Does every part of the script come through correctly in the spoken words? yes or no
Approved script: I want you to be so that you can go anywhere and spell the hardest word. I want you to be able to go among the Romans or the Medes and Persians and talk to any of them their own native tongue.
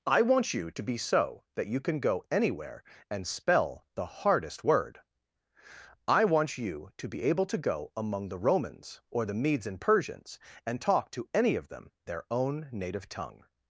yes